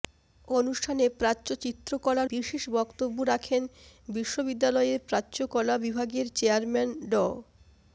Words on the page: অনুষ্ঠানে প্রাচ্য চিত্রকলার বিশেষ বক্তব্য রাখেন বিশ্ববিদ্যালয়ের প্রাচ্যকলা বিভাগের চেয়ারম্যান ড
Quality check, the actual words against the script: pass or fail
pass